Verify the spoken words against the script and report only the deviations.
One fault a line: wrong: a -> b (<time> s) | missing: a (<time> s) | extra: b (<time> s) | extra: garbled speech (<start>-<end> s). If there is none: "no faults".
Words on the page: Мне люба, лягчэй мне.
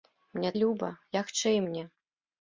no faults